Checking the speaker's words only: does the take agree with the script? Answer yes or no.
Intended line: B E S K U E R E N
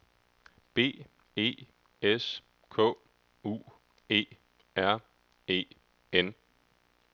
yes